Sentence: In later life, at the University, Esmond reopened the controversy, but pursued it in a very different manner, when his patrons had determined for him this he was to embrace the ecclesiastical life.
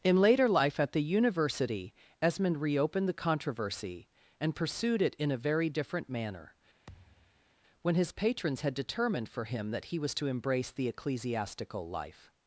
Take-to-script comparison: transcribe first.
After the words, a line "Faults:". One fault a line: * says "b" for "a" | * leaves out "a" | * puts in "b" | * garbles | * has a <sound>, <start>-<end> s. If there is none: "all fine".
In later life, at the University, Esmond reopened the controversy, and pursued it in a very different manner, when his patrons had determined for him that he was to embrace the ecclesiastical life.
Faults:
* says "and" for "but"
* has a thud, 6.9-7.5 s
* says "that" for "this"